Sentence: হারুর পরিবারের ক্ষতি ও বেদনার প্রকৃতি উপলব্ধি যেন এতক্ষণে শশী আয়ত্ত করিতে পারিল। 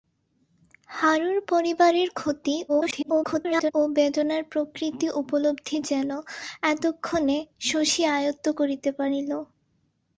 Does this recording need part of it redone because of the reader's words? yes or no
yes